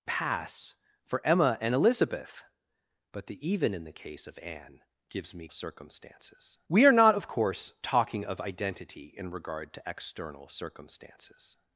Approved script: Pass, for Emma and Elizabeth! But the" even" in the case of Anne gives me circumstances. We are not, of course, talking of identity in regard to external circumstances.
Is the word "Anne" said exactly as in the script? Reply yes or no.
yes